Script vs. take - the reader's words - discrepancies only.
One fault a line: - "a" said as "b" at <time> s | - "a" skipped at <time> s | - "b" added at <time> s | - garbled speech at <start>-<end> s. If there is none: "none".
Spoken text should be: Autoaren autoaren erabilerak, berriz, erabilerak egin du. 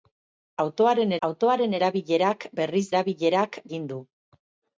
none